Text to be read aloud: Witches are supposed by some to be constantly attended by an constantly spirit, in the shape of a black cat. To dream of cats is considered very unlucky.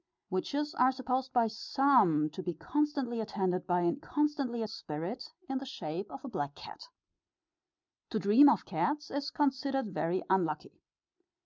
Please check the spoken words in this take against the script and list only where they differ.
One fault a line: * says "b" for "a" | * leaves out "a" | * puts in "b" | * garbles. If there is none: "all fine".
all fine